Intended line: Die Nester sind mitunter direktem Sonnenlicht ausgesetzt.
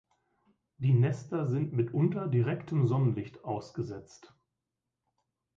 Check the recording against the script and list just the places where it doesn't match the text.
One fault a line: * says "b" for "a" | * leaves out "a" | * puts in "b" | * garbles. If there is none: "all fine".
all fine